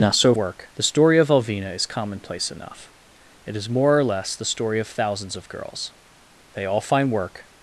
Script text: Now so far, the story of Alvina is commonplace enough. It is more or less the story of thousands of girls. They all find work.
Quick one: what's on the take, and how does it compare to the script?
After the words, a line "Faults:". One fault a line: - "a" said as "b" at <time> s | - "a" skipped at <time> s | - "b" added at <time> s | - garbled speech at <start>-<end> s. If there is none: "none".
Now so work, the story of Alvina is commonplace enough. It is more or less the story of thousands of girls. They all find work.
Faults:
- "far" said as "work" at 0.4 s